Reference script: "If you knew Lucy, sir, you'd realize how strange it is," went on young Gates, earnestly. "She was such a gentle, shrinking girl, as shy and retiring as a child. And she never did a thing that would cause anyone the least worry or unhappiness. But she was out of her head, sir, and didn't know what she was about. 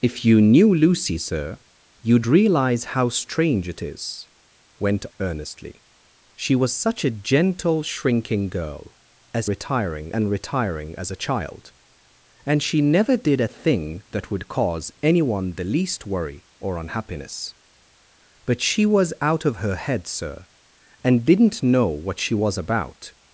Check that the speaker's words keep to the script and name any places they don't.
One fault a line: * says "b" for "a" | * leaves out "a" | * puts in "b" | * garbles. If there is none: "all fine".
* leaves out "on young Gates"
* says "retiring" for "shy"